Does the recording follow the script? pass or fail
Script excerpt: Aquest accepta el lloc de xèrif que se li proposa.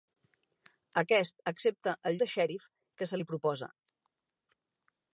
fail